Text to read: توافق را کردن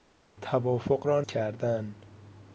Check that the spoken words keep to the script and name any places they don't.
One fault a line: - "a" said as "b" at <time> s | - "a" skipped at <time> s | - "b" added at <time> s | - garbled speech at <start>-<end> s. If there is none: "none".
none